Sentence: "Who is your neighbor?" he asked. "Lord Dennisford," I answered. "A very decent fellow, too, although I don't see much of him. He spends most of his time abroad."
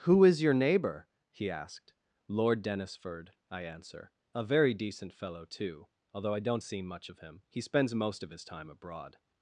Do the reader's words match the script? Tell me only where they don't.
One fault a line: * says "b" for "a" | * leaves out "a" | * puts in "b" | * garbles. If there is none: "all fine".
* says "answer" for "answered"